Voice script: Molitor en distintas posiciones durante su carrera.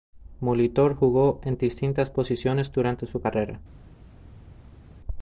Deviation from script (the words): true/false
true